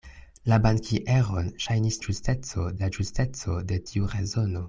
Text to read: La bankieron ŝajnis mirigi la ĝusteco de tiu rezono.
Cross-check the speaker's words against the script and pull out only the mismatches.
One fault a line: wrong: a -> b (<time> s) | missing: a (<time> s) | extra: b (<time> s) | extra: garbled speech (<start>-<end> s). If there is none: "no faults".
wrong: mirigi -> ĝusteco (2.1 s)